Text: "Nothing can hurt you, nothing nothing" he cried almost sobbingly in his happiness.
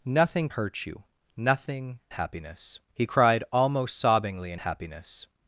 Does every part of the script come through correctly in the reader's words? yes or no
no